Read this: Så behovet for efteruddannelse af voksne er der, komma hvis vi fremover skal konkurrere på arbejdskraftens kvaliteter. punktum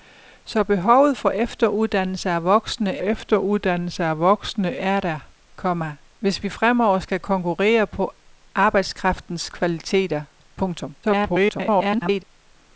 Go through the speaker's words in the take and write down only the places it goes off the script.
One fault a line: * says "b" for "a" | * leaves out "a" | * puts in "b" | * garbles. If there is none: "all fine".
* puts in "efteruddannelse af voksne"
* garbles